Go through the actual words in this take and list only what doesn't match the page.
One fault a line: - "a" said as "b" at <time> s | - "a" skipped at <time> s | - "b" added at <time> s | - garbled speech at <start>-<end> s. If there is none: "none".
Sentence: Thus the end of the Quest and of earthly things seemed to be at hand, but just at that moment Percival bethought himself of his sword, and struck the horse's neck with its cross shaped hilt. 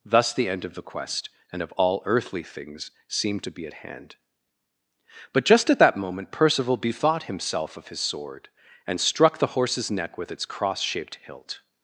- "all" added at 1.7 s